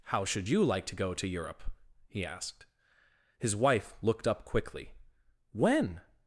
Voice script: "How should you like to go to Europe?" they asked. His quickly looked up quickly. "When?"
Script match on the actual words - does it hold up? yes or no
no